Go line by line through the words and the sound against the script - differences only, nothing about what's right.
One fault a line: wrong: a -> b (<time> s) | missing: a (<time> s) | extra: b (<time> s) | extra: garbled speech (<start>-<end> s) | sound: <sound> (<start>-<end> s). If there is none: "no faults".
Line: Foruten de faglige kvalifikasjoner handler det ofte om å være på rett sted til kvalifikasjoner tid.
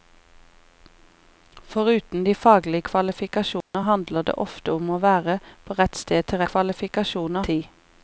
sound: dropout (3.6-3.7 s)